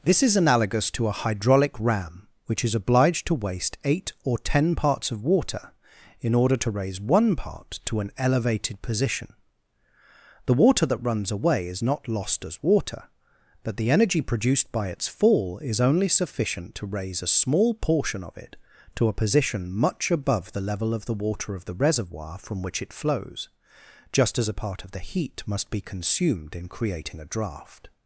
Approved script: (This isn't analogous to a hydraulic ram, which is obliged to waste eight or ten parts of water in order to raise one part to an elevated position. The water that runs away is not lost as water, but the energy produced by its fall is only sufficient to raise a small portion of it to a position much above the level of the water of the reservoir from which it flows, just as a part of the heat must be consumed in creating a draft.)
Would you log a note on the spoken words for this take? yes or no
yes